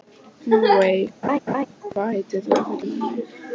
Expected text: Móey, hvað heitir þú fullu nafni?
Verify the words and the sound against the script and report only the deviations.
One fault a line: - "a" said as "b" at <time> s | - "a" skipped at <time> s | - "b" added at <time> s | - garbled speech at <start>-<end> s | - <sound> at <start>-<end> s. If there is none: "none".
- laugh at 1.2-1.7 s